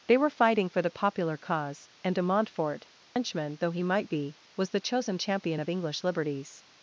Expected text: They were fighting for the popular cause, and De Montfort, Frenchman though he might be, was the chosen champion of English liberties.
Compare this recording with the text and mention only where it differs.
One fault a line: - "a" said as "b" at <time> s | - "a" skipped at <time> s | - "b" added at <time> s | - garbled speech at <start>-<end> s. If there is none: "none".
none